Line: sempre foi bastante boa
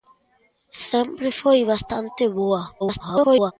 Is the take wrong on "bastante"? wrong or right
right